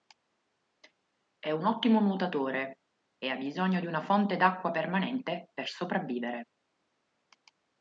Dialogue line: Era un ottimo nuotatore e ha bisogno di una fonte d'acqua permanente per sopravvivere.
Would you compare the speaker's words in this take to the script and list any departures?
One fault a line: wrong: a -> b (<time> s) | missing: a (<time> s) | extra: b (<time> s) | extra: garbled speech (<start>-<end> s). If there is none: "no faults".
wrong: Era -> È (1.4 s)